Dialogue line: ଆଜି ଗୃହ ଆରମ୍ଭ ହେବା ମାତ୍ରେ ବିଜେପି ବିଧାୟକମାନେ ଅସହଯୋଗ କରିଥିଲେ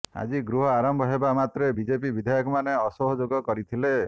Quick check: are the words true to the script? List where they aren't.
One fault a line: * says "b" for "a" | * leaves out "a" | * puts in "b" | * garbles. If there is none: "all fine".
all fine